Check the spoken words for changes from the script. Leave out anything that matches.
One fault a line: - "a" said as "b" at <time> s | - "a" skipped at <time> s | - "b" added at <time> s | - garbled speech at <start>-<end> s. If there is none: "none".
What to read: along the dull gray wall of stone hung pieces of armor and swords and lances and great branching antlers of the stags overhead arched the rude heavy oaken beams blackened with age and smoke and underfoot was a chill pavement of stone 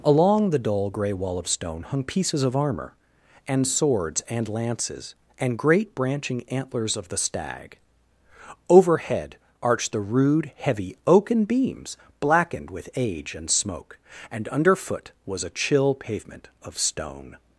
- "stags" said as "stag" at 7.2 s